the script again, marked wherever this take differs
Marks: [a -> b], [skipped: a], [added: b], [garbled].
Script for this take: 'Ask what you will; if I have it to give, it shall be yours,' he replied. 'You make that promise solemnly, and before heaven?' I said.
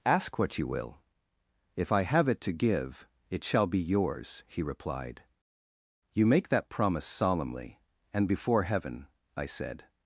'Ask what you will; if I have it to give, it shall be yours,' he replied. 'You make that promise solemnly, and before heaven?' I said.